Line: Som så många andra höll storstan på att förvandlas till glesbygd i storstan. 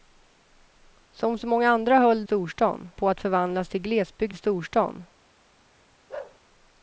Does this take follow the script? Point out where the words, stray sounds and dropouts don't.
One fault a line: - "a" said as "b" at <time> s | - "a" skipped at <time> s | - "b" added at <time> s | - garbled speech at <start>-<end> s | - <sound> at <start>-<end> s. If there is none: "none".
- bark at 6.1-6.4 s